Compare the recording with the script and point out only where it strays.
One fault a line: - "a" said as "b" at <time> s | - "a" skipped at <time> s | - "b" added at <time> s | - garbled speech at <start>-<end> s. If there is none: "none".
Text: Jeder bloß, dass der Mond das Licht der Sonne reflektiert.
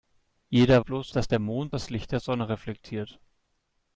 none